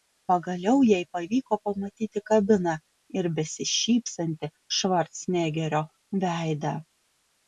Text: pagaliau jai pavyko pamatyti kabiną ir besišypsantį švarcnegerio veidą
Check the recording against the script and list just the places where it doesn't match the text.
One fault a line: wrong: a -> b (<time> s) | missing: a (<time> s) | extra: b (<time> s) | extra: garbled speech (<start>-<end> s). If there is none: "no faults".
no faults